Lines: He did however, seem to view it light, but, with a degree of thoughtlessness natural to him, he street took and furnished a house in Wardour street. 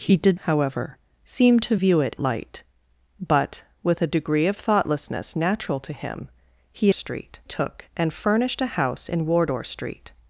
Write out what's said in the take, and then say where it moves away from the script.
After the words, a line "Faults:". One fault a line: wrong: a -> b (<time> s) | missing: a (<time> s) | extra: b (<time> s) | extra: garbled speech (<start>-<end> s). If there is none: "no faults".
He did however, seem to view it light, but, with a degree of thoughtlessness natural to him, he street took and furnished a house in Wardour street.
Faults:
no faults